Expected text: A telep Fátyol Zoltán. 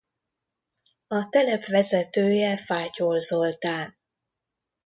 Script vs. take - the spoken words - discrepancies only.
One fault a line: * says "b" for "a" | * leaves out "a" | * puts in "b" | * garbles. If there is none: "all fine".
* puts in "vezetője"